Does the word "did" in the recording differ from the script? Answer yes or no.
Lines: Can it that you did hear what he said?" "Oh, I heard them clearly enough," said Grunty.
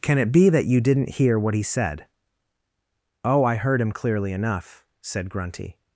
yes